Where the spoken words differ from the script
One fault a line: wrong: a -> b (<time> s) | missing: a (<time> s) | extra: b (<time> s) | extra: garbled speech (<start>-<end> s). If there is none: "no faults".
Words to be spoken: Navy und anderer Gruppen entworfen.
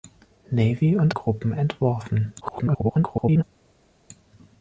missing: anderer (1.1 s)
extra: garbled speech (2.4-3.4 s)